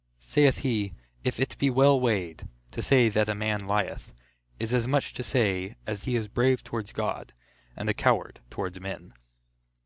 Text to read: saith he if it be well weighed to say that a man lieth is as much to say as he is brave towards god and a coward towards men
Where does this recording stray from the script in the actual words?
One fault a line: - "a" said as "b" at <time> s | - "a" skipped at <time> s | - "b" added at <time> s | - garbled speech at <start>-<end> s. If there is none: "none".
none